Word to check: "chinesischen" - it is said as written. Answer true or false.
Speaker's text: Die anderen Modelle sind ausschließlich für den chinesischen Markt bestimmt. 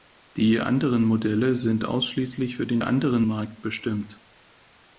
false